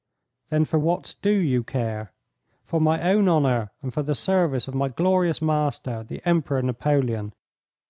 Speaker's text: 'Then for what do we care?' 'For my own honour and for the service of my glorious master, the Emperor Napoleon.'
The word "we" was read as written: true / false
false